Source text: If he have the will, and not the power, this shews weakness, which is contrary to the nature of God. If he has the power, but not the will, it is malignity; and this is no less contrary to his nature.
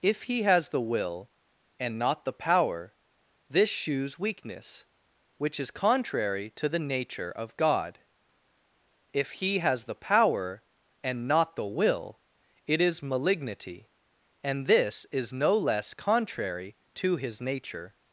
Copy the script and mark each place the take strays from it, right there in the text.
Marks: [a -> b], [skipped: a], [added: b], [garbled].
If he [have -> has] the will, and not the power, this shews weakness, which is contrary to the nature of God. If he has the power, [but -> and] not the will, it is malignity; and this is no less contrary to his nature.